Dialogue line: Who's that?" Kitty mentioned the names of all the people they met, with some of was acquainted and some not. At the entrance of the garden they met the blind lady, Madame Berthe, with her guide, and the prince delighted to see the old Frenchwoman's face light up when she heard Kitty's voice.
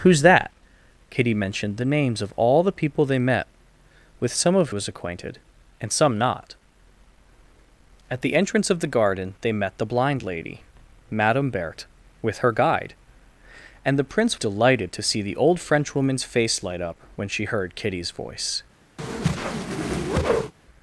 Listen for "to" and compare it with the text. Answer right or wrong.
right